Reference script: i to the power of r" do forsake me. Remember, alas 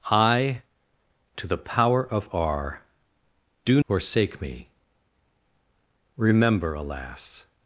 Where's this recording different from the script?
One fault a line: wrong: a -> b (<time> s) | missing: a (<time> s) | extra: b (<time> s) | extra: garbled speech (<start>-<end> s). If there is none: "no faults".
no faults